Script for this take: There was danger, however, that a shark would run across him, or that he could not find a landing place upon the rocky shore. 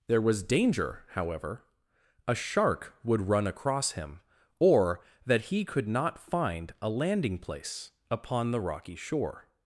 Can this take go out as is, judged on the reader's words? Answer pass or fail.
fail